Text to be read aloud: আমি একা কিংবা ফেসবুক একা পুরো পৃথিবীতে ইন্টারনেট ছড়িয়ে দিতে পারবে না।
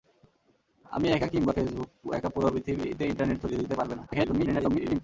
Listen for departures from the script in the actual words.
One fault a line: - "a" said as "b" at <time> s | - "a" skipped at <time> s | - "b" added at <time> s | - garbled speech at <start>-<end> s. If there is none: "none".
- garbled speech at 4.1-5.0 s